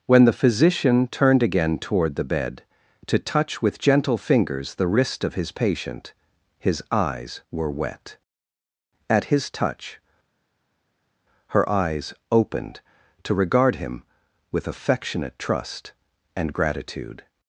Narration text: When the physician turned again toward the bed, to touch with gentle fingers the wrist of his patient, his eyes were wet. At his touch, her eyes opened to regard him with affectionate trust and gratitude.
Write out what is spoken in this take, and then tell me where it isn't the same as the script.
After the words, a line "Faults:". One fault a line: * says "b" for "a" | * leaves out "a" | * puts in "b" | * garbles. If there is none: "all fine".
When the physician turned again toward the bed, to touch with gentle fingers the wrist of his patient, his eyes were wet. At his touch, her eyes opened to regard him with affectionate trust and gratitude.
Faults:
all fine